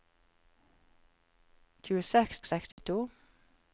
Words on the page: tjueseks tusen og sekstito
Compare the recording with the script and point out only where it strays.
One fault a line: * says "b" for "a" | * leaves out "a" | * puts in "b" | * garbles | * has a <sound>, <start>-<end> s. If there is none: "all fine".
* leaves out "tusen"
* has a dropout, 2.7-2.8 s